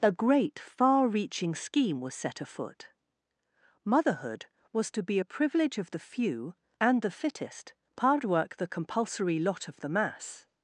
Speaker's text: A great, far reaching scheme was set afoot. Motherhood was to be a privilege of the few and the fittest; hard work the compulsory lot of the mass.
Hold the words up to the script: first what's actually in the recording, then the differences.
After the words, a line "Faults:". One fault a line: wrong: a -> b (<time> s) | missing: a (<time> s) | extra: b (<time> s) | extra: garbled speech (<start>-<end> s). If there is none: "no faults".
A great, far reaching scheme was set afoot. Motherhood was to be a privilege of the few and the fittest; hard work the compulsory lot of the mass.
Faults:
no faults